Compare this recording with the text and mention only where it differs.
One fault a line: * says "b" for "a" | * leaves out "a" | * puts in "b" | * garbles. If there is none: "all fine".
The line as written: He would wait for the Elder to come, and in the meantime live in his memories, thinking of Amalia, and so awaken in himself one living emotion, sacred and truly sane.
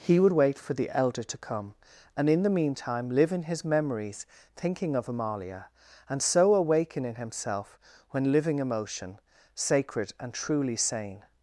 * says "when" for "one"